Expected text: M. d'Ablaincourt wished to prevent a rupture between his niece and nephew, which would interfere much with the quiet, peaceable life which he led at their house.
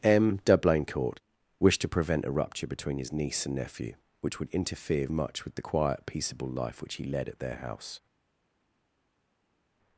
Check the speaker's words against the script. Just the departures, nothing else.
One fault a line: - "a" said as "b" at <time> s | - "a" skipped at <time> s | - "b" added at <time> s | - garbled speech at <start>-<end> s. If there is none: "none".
none